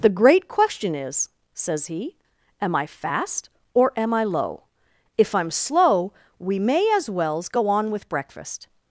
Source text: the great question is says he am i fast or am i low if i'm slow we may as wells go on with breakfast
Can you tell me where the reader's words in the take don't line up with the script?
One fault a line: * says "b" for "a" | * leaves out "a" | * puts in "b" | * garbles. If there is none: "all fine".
all fine